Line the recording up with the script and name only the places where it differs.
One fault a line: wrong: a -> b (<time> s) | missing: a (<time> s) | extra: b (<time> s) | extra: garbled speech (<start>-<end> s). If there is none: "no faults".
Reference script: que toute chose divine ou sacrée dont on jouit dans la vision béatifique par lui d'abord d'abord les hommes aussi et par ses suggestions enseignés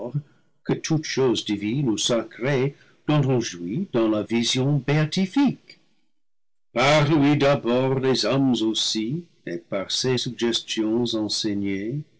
missing: d'abord (8.0 s)